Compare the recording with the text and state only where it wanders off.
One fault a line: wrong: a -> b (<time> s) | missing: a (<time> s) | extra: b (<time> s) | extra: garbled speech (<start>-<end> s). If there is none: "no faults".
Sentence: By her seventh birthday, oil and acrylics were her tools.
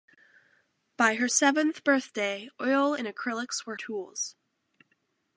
missing: her (3.8 s)